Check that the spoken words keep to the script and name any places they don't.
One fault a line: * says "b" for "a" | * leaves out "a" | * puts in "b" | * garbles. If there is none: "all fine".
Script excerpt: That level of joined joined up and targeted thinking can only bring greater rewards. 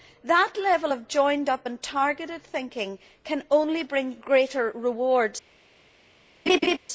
* leaves out "joined"